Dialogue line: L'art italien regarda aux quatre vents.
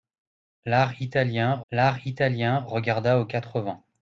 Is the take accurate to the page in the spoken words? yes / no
no